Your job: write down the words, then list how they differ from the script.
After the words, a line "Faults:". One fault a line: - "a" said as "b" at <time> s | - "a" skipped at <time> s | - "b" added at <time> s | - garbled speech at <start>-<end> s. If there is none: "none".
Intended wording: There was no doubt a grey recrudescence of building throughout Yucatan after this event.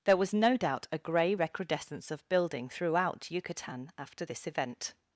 There was no doubt a grey recrudescence of building throughout Yucatan after this event.
Faults:
none